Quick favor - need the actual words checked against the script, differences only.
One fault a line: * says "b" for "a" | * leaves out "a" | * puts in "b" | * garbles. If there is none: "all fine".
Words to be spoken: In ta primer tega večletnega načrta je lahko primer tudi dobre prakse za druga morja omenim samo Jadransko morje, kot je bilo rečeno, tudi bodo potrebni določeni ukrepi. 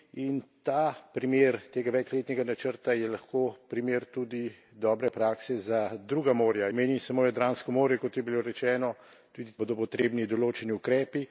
all fine